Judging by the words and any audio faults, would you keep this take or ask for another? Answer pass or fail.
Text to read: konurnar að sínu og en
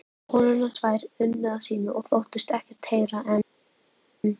fail